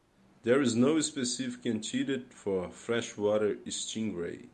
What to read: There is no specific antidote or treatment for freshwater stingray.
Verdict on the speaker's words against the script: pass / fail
fail